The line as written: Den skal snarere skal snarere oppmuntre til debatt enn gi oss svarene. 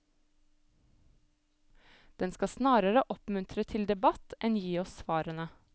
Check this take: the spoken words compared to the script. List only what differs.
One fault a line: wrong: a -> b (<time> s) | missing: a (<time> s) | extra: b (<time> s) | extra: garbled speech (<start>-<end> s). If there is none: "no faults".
missing: skal snarere (3.0 s)